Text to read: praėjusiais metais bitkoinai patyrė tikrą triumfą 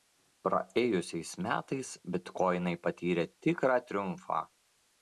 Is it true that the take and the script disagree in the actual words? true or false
false